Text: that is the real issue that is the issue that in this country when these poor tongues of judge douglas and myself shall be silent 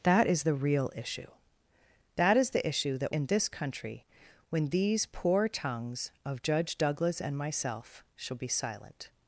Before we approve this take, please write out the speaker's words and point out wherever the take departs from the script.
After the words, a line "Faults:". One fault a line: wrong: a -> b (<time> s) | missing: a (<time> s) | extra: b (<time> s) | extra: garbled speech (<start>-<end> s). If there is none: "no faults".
that is the real issue that is the issue that in this country when these poor tongues of judge douglas and myself shall be silent
Faults:
no faults